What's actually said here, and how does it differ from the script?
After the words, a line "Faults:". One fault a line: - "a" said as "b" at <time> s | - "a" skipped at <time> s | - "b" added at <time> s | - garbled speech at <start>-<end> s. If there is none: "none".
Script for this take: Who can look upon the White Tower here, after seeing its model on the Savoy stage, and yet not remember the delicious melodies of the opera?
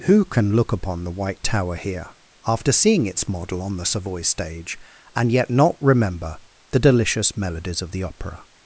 Who can look upon the White Tower here, after seeing its model on the Savoy stage, and yet not remember the delicious melodies of the opera?
Faults:
none